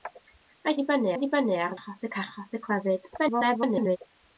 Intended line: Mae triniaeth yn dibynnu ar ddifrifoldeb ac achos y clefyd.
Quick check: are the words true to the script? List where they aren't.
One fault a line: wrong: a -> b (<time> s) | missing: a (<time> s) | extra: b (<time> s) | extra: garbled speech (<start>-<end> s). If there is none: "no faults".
wrong: triniaeth -> dibynnu (0.8 s)
wrong: ddifrifoldeb -> achos (1.8 s)
extra: garbled speech (3.2-4.0 s)